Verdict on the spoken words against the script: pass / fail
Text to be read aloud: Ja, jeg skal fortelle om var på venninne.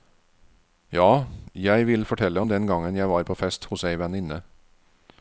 fail